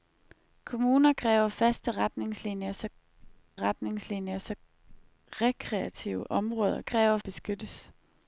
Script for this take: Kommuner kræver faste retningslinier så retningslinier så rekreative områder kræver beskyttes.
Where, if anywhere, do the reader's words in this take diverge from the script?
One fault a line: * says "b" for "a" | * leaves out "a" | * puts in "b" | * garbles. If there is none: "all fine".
all fine